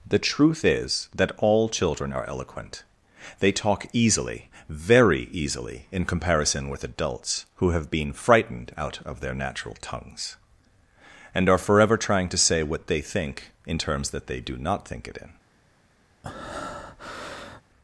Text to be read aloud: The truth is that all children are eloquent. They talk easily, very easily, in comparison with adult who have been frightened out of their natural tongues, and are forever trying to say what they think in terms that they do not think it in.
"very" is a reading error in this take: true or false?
false